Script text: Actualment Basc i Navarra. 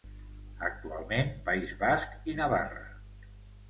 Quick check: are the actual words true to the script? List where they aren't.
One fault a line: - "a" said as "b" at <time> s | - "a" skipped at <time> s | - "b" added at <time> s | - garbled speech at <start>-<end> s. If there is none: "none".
- "País" added at 1.5 s